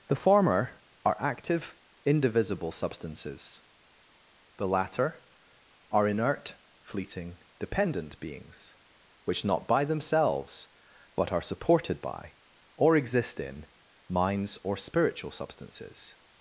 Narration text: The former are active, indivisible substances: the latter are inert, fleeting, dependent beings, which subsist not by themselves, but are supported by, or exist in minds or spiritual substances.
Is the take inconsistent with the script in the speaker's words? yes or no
yes